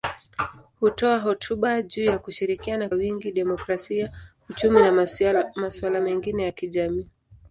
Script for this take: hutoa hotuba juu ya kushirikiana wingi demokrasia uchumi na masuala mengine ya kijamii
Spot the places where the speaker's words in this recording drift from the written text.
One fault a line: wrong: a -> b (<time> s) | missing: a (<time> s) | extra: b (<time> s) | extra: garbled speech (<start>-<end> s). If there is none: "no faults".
no faults